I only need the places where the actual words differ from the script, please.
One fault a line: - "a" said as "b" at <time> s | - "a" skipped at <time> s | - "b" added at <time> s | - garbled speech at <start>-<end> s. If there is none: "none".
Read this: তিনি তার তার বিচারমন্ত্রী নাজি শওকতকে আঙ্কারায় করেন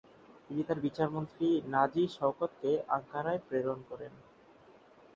- "তার" skipped at 0.8 s
- "প্রেরণ" added at 3.5 s